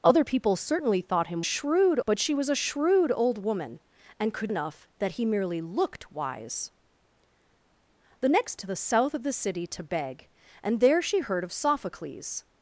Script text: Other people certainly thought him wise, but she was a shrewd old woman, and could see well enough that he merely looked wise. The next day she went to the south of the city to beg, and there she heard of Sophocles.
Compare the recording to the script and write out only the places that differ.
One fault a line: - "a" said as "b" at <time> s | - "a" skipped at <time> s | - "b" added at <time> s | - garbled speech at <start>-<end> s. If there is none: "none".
- "wise" said as "shrewd" at 1.4 s
- "see well" skipped at 4.5 s
- "day she went" skipped at 8.6 s